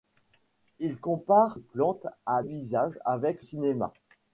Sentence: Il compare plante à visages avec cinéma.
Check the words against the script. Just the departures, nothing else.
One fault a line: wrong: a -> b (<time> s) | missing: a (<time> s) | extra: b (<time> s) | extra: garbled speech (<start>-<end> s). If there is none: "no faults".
no faults